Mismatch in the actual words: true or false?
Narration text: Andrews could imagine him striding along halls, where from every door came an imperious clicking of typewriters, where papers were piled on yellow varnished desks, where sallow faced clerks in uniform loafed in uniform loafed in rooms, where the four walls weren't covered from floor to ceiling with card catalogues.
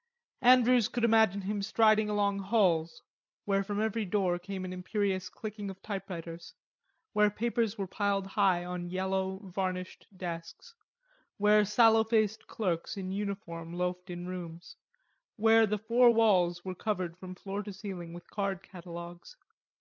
true